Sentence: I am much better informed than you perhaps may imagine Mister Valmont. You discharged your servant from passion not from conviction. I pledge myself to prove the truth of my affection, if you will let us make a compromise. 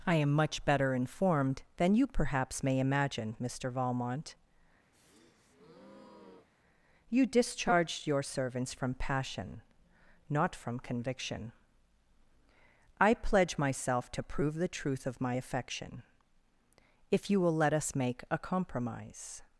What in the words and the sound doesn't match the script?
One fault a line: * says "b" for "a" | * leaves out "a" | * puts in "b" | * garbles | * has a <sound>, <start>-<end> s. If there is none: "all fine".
* has a breath, 4.9-6.5 s
* says "servants" for "servant"